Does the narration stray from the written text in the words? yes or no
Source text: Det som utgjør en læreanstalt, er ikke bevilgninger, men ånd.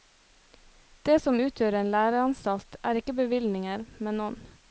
no